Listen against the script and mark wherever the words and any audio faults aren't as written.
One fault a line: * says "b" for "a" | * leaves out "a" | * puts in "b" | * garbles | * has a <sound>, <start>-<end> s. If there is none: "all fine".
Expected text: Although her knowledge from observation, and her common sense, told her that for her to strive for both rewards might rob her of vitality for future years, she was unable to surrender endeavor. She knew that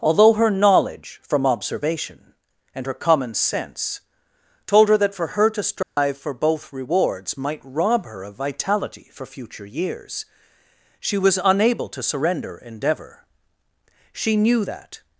* has a dropout, 5.8-6.0 s